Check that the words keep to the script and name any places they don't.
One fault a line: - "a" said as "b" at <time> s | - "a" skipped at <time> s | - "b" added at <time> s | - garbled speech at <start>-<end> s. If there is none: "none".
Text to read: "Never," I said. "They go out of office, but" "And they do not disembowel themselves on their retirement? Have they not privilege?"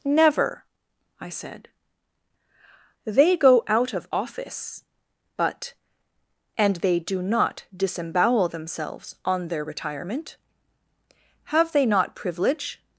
none